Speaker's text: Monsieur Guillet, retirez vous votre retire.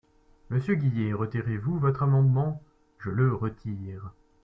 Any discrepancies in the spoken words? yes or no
yes